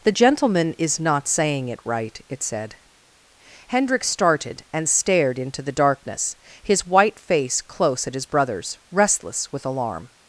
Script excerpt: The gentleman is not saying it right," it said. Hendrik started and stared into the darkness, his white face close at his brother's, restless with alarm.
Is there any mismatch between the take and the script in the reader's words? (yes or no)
no